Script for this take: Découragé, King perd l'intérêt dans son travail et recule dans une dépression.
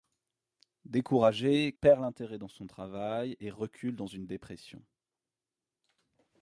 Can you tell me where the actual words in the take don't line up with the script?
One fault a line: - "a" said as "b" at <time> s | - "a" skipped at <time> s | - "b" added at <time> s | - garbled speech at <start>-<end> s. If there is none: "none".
- "King" skipped at 1.8 s